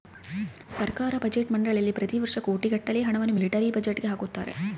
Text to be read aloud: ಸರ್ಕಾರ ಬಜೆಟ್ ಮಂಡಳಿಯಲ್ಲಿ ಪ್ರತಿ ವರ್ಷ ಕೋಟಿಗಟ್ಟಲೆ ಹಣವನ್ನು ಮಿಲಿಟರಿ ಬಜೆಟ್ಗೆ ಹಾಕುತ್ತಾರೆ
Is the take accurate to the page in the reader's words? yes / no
yes